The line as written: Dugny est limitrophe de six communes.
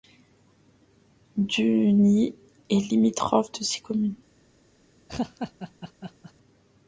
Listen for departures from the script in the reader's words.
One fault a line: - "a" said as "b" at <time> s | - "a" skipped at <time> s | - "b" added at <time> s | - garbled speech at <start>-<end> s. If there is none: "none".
none